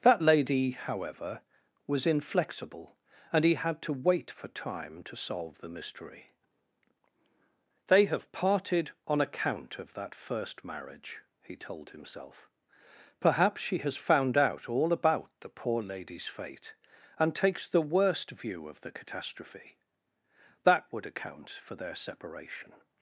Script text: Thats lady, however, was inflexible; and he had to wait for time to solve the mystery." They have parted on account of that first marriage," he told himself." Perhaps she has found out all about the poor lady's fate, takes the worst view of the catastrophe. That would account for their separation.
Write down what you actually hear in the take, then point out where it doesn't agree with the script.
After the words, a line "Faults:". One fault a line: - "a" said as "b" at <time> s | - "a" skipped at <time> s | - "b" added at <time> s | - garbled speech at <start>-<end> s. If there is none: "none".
That lady, however, was inflexible; and he had to wait for time to solve the mystery." They have parted on account of that first marriage," he told himself." Perhaps she has found out all about the poor lady's fate, and takes the worst view of the catastrophe. That would account for their separation.
Faults:
- "Thats" said as "That" at 0.0 s
- "and" added at 17.2 s